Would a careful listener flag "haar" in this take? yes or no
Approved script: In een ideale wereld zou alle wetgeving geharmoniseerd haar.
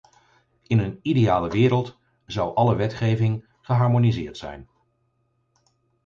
yes